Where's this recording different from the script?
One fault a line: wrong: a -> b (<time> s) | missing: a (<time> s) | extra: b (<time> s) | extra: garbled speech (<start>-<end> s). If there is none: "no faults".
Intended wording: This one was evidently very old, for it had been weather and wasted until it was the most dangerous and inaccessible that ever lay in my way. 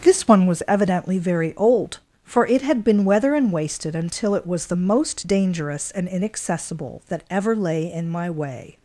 no faults